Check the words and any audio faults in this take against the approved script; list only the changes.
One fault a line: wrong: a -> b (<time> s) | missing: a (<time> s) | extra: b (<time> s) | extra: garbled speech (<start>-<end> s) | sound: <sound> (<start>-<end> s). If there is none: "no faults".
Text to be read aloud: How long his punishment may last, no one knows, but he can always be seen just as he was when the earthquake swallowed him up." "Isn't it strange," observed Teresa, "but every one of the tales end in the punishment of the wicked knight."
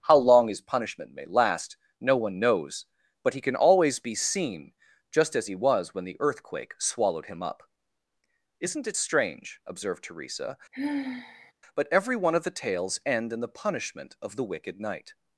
sound: sigh (10.7-11.5 s)